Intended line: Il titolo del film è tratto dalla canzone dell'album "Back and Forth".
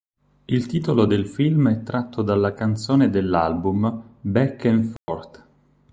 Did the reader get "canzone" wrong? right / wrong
right